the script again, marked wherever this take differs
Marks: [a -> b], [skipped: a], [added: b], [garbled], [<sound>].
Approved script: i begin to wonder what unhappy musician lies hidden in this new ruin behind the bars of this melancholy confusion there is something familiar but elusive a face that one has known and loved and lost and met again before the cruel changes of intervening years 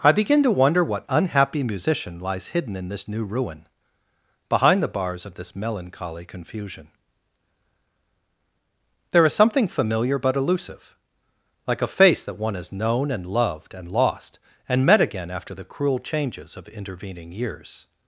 i begin to wonder what unhappy musician lies hidden in this new ruin behind the bars of this melancholy confusion there is something familiar but elusive [added: like] a face that one has known and loved and lost and met again [before -> after] the cruel changes of intervening years